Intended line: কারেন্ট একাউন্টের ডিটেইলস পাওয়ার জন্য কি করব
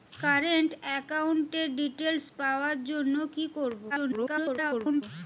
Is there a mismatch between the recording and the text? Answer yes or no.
yes